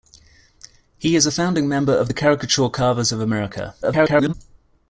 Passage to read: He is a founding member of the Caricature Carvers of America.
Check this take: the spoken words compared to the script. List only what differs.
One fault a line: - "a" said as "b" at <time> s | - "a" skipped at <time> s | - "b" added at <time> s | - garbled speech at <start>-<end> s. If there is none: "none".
- garbled speech at 3.8-4.3 s